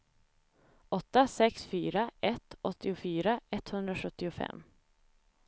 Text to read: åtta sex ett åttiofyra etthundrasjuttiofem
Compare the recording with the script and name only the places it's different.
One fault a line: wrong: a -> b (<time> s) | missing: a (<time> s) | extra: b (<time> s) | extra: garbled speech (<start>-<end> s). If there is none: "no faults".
extra: fyra (1.6 s)